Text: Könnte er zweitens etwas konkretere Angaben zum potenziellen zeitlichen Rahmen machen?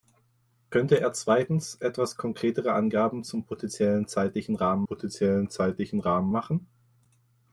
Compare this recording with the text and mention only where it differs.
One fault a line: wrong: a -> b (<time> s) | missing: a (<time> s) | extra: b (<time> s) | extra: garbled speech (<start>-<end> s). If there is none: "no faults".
extra: potenziellen zeitlichen Rahmen (4.8 s)